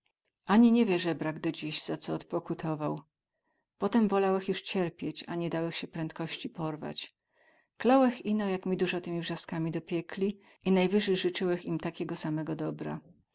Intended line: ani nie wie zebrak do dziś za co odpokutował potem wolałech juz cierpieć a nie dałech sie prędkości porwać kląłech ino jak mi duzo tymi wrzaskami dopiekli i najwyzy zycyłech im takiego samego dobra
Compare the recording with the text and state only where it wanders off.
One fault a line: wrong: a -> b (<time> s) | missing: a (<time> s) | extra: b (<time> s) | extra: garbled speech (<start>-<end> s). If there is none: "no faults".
no faults